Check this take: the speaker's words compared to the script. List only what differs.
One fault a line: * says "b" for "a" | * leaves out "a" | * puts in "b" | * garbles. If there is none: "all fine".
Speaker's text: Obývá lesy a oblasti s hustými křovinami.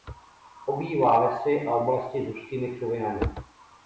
all fine